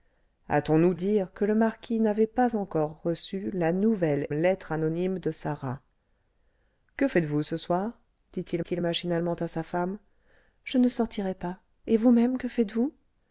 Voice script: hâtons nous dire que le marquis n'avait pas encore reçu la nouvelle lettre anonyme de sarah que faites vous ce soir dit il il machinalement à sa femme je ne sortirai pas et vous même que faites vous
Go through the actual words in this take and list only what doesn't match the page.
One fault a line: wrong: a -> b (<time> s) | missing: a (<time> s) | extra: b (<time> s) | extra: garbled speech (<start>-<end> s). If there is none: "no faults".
no faults